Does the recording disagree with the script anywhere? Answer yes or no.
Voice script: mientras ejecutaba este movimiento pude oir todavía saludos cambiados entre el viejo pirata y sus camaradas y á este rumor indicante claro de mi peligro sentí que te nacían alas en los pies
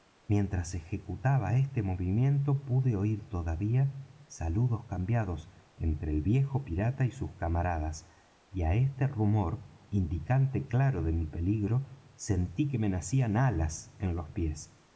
yes